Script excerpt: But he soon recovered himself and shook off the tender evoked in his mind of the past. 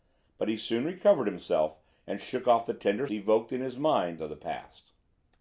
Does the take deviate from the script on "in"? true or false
false